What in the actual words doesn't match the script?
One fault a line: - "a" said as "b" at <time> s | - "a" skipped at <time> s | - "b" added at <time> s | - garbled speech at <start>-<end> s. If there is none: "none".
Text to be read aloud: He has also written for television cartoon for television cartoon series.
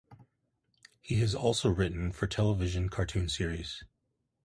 - "for television cartoon" skipped at 3.3 s